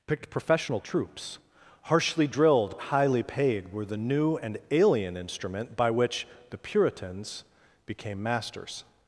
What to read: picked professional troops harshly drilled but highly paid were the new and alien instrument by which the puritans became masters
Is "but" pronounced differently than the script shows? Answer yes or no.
yes